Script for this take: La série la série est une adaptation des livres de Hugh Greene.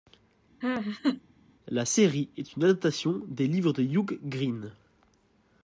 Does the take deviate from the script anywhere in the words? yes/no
yes